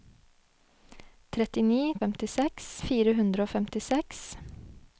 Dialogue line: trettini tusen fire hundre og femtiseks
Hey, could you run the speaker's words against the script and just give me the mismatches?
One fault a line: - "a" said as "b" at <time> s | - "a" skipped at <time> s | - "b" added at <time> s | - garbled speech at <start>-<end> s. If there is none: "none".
- "tusen" said as "femtiseks" at 2.0 s